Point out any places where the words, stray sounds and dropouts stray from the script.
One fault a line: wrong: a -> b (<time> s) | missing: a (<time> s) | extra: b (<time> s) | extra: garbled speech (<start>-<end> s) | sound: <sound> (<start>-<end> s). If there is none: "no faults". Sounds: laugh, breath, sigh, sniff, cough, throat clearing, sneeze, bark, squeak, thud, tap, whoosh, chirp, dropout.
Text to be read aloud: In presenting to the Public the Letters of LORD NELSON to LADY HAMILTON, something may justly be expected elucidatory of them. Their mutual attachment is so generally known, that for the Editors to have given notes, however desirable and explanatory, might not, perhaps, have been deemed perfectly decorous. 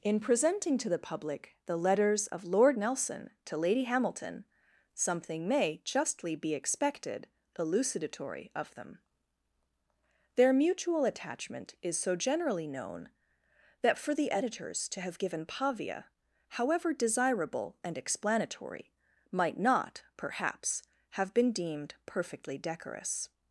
wrong: notes -> pavia (15.5 s)